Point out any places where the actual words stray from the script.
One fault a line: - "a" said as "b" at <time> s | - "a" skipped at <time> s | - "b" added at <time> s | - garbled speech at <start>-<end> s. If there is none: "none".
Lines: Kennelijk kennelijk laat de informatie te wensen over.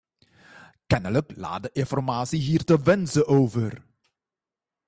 - "kennelijk" skipped at 1.3 s
- "hier" added at 2.4 s